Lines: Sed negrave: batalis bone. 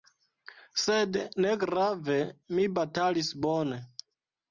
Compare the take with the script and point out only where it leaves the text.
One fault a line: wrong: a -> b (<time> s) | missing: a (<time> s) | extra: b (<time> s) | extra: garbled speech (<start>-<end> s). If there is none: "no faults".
extra: mi (2.6 s)